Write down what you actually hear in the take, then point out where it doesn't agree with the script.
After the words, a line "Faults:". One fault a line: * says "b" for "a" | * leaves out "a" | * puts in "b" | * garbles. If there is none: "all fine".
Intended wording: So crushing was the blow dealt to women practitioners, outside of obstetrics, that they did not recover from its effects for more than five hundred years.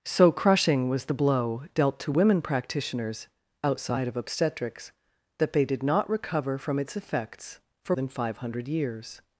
So crushing was the blow dealt to women practitioners, outside of obstetrics, that they did not recover from its effects for than five hundred years.
Faults:
* leaves out "more"